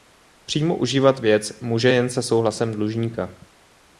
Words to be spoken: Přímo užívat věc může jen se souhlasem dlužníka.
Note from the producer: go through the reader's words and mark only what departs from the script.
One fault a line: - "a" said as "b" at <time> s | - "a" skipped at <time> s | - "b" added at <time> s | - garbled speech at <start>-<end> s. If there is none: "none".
none